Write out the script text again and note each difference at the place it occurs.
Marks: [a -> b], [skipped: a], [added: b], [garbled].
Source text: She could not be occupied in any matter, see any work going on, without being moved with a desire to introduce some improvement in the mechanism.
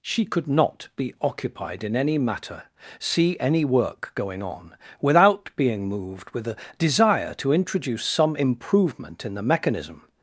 She could not be occupied in any matter, see any work going on, without being moved with a desire to introduce some improvement in the mechanism.